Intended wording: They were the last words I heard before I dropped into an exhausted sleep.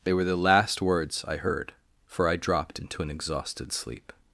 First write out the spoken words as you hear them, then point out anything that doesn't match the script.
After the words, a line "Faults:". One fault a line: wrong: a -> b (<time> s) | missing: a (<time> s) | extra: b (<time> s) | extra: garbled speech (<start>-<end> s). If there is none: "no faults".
They were the last words I heard for I dropped into an exhausted sleep.
Faults:
wrong: before -> for (2.1 s)